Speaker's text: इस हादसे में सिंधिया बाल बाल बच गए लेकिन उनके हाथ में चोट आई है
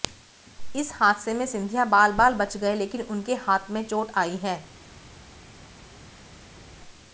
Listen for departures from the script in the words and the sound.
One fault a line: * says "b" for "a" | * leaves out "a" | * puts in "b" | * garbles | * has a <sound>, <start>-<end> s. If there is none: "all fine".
all fine